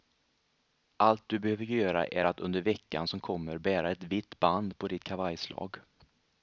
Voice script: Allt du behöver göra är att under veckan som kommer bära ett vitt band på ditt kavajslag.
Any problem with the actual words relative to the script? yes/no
no